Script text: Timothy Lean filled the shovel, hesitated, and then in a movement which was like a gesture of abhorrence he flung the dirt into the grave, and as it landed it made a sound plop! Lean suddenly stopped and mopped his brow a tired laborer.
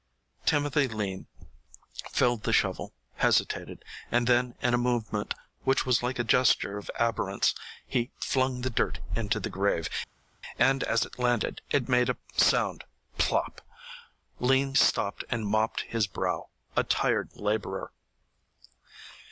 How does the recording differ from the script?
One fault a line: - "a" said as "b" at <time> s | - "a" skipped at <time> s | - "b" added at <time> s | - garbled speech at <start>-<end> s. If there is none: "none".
- "suddenly" skipped at 14.8 s